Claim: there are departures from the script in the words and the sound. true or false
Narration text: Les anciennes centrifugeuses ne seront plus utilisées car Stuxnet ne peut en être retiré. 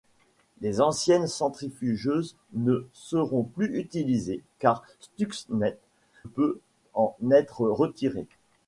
true